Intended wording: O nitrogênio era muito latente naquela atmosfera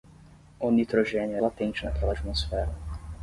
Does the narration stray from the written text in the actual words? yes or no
yes